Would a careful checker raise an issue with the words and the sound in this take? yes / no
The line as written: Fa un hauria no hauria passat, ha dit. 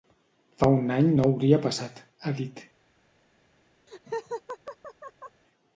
yes